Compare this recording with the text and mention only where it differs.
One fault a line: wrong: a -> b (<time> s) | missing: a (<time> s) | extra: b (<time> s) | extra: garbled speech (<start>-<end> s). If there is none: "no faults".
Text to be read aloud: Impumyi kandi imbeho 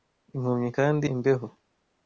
no faults